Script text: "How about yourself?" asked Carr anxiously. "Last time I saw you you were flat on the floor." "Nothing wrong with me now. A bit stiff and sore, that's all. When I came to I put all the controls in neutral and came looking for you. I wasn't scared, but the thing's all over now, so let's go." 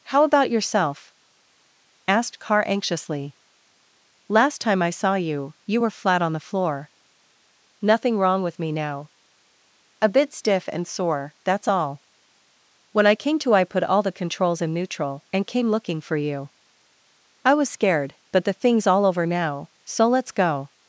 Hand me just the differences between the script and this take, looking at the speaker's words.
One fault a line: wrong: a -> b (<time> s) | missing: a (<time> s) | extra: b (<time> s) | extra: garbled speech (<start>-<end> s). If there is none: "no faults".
wrong: wasn't -> was (17.5 s)